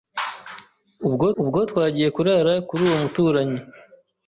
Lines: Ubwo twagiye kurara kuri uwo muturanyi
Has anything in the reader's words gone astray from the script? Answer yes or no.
yes